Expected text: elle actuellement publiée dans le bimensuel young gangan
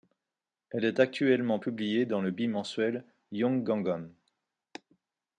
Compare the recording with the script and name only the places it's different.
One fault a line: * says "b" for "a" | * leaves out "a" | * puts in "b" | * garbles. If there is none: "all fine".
* puts in "est"